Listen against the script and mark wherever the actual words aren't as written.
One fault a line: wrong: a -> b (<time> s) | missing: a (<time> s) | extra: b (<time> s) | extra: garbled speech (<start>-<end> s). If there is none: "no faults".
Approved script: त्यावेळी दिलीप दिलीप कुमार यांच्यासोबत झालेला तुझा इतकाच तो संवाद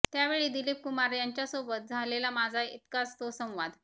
missing: दिलीप (0.8 s)
wrong: तुझा -> माझा (2.3 s)